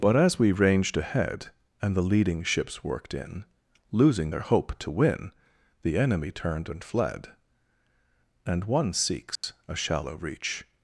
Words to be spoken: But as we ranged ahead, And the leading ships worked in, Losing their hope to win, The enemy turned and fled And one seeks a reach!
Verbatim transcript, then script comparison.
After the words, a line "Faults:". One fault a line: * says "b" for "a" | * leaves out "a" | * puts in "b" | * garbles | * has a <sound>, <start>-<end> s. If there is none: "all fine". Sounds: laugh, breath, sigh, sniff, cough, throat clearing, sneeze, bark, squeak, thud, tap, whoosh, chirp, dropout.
But as we ranged ahead, And the leading ships worked in, Losing their hope to win, The enemy turned and fled And one seeks a shallow reach!
Faults:
* has a dropout, 9.4-9.4 s
* puts in "shallow"